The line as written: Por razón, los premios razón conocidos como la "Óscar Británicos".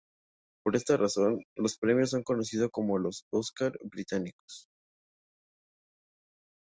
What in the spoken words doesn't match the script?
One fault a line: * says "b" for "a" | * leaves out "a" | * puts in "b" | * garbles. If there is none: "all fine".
* puts in "esta"
* says "son" for "razón"
* says "los" for "la"